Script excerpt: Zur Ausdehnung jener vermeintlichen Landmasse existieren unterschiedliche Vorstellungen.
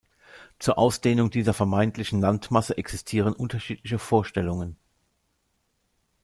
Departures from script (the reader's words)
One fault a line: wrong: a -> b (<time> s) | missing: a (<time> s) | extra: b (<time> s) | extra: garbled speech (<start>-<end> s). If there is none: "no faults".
wrong: jener -> dieser (1.3 s)